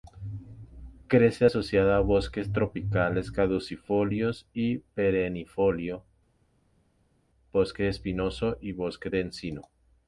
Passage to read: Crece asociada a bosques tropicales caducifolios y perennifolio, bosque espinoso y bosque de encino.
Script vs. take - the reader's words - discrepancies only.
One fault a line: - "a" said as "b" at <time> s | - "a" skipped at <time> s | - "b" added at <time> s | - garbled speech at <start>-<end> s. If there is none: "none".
none